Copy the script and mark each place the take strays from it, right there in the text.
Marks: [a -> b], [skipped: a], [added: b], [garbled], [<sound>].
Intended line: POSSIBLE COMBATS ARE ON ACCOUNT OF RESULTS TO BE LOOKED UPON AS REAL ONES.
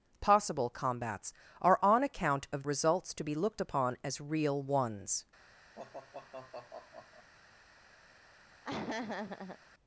POSSIBLE COMBATS ARE ON ACCOUNT OF RESULTS TO BE LOOKED UPON AS REAL ONES. [sigh] [laugh]